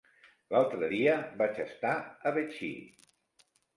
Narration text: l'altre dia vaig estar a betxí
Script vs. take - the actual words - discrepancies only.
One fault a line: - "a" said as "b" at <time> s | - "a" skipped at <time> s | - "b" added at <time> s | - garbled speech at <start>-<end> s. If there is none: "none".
none